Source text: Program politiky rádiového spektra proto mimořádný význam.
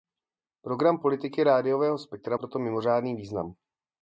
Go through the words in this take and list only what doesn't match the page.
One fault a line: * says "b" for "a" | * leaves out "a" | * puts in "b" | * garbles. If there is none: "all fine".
all fine